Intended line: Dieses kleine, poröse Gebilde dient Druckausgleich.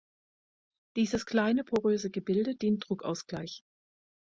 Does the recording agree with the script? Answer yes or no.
yes